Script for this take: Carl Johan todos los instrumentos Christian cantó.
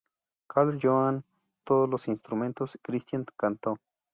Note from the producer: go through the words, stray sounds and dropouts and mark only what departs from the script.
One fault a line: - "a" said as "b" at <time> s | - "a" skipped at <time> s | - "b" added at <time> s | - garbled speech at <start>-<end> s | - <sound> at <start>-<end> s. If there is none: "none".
none